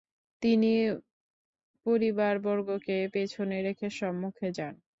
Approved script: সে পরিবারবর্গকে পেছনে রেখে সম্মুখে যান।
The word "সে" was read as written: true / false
false